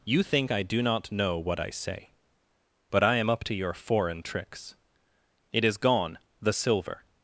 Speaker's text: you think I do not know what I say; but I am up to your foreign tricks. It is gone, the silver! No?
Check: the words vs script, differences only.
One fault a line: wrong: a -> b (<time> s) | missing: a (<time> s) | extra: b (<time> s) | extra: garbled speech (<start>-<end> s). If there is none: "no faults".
missing: No (7.0 s)